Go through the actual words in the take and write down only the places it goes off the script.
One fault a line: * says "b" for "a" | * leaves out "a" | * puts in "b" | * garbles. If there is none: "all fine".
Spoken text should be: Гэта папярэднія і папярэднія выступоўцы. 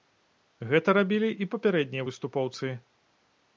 * says "рабілі" for "папярэднія"